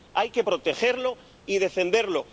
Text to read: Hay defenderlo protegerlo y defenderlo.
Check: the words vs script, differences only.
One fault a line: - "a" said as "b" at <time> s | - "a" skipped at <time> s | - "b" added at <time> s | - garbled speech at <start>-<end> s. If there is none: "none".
- "defenderlo" said as "que" at 0.3 s